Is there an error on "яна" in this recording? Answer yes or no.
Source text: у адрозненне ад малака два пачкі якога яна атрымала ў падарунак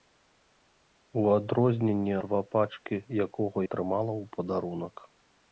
yes